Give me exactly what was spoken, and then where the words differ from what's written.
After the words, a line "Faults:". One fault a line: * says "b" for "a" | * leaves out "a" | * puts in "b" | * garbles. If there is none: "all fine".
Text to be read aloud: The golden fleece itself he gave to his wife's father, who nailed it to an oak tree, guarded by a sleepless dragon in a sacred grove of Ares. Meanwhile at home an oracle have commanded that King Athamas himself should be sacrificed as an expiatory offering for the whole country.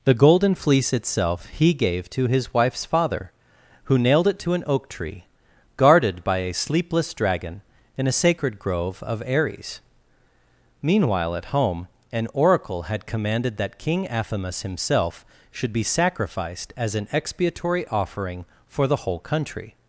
The golden fleece itself he gave to his wife's father, who nailed it to an oak tree, guarded by a sleepless dragon in a sacred grove of Ares. Meanwhile at home an oracle had commanded that King Athamas himself should be sacrificed as an expiatory offering for the whole country.
Faults:
* says "had" for "have"